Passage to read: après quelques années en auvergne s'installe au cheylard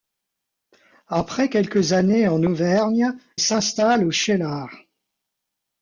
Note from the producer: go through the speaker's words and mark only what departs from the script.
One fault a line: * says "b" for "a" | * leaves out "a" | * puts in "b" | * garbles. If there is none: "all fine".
all fine